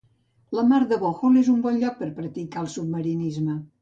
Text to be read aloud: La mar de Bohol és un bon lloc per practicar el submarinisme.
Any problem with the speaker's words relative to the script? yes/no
no